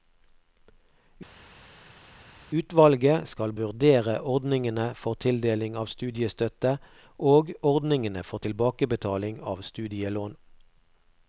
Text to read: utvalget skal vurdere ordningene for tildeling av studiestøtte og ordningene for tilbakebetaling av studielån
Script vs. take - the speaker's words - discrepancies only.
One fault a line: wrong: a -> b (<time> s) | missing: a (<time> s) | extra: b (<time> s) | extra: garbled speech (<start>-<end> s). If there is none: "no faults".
no faults